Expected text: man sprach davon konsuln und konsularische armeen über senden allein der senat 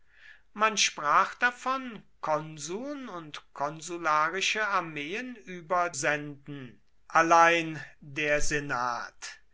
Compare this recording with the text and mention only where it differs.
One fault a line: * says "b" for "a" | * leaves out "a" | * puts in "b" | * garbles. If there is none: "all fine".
all fine